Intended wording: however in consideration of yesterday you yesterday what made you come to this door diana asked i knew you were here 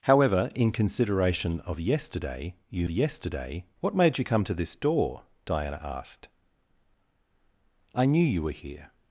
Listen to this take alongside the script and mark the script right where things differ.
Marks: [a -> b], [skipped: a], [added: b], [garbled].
however in consideration of yesterday you yesterday what made you come to this door diana asked i knew you were here